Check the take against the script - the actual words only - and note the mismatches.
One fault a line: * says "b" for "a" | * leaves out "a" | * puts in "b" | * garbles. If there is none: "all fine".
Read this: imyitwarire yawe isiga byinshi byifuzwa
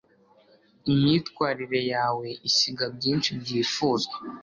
all fine